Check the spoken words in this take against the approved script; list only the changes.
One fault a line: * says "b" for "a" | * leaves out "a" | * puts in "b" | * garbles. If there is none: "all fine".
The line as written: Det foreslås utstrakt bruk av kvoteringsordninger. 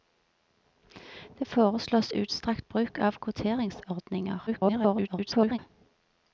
* garbles